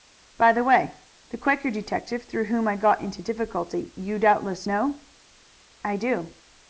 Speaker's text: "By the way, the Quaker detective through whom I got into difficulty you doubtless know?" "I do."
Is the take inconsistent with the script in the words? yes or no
no